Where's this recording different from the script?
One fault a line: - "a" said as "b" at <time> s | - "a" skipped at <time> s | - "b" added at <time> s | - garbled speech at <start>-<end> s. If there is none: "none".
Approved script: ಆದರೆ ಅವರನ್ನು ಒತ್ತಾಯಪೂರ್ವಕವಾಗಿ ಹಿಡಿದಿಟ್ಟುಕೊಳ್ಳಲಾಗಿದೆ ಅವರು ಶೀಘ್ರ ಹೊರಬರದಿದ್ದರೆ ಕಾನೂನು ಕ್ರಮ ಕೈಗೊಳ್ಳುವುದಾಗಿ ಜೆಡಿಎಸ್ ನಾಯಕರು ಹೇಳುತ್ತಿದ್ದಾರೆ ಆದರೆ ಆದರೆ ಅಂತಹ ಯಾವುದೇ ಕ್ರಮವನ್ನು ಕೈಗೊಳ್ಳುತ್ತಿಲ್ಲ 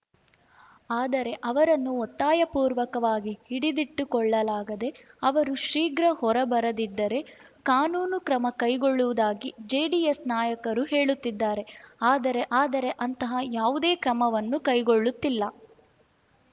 none